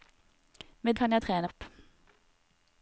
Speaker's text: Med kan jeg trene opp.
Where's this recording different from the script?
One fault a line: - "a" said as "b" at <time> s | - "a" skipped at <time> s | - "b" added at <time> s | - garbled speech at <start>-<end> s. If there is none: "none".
none